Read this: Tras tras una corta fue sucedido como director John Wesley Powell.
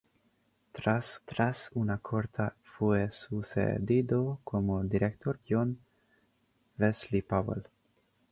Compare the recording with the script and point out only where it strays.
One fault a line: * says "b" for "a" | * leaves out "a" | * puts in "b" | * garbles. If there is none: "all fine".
all fine